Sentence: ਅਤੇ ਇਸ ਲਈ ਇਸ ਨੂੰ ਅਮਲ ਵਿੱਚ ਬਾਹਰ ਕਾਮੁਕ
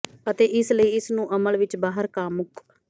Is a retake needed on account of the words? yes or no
no